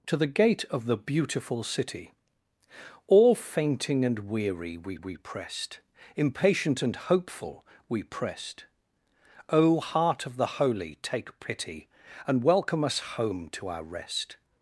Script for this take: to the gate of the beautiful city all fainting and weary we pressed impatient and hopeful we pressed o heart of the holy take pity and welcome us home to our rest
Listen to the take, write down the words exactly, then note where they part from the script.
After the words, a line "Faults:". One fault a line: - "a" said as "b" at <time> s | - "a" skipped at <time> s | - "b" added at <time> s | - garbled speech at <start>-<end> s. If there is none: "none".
to the gate of the beautiful city all fainting and weary we we pressed impatient and hopeful we pressed o heart of the holy take pity and welcome us home to our rest
Faults:
- "we" added at 5.0 s